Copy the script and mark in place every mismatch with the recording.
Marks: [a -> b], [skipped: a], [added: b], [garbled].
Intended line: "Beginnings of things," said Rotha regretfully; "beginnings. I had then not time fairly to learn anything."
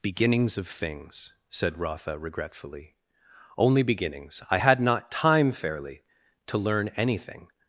"Beginnings of things," said Rotha regretfully; [added: only] "beginnings. I had [skipped: then] not time fairly to learn anything."